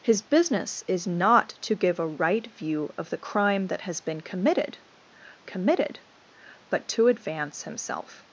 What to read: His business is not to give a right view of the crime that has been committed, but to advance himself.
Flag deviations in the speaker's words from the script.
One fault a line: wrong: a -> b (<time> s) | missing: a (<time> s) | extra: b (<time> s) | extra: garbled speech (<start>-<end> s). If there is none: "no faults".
extra: committed (5.4 s)